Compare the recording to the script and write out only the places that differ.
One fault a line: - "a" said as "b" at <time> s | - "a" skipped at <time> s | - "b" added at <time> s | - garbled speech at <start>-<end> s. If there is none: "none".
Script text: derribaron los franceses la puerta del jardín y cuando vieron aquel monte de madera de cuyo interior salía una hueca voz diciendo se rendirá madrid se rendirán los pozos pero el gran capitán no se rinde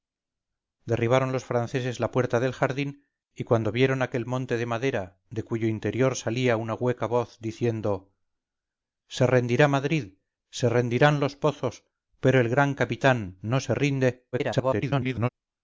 - garbled speech at 14.3-15.3 s